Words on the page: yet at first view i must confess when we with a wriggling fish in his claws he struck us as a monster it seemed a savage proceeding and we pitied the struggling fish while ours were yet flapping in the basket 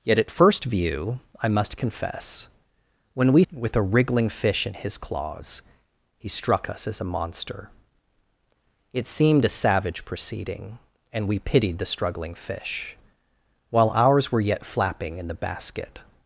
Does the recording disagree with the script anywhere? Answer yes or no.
no